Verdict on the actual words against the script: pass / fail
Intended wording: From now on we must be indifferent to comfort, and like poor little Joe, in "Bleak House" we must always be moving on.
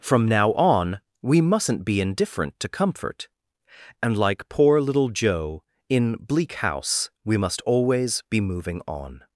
fail